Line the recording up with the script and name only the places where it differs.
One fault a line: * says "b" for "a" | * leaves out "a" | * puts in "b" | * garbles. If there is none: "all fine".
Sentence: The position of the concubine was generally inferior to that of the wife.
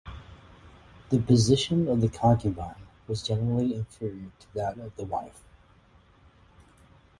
all fine